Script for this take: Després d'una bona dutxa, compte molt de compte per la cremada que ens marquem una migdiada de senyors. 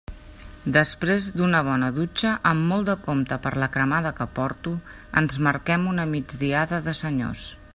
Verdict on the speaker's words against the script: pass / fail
fail